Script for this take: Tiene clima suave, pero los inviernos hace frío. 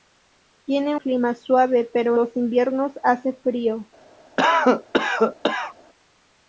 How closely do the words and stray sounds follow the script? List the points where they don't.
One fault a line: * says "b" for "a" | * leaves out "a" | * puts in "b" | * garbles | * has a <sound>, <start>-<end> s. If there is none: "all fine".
* has a cough, 4.4-5.7 s